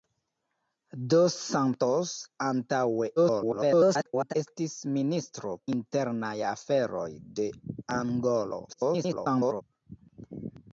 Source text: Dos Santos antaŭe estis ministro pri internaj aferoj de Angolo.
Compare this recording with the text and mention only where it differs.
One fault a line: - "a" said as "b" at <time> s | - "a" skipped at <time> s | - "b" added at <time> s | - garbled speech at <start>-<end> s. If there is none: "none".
- garbled speech at 3.2-4.3 s
- "pri" skipped at 5.6 s
- garbled speech at 8.7-9.6 s